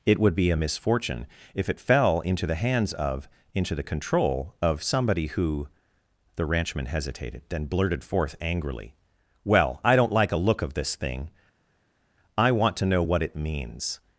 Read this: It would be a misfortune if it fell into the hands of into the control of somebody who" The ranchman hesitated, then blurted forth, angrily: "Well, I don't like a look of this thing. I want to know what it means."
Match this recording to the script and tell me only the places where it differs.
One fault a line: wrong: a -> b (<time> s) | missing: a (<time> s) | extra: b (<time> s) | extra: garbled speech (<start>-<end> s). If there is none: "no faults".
no faults